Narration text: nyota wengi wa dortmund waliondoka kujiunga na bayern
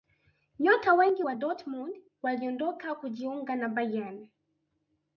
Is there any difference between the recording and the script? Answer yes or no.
no